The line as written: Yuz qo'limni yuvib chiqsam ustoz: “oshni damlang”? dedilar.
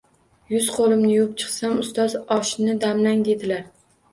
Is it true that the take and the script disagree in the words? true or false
false